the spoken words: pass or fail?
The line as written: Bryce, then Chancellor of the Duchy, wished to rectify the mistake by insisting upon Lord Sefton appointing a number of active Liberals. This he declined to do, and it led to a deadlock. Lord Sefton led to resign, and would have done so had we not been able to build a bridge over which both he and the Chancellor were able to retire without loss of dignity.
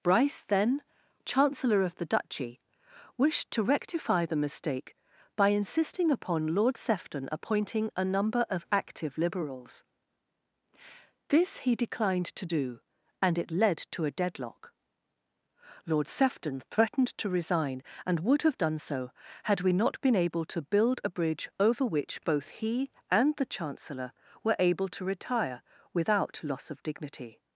fail